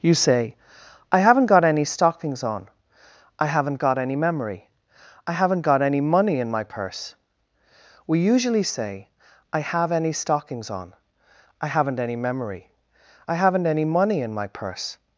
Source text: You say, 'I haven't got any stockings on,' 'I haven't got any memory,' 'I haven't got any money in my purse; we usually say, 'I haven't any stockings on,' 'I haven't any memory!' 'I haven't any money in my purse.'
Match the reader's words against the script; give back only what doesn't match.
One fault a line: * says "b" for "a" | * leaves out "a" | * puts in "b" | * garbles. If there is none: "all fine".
* says "have" for "haven't"